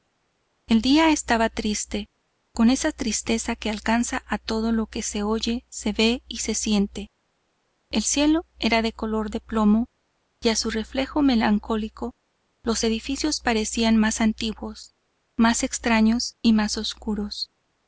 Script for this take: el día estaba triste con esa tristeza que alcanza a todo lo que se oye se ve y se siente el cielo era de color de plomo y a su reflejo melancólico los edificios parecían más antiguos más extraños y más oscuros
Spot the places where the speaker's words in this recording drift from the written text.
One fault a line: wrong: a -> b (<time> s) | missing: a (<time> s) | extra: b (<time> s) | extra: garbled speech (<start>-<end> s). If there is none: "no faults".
no faults